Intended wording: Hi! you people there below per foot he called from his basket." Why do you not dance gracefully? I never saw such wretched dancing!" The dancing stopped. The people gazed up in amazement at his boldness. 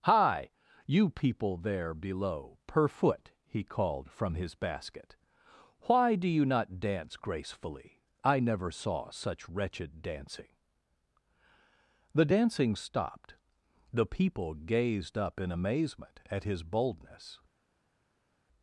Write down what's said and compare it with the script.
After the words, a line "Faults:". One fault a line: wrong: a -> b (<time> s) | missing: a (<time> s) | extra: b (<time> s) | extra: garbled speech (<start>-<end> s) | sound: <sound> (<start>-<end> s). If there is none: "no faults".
Hi! you people there below per foot he called from his basket." Why do you not dance gracefully? I never saw such wretched dancing!" The dancing stopped. The people gazed up in amazement at his boldness.
Faults:
no faults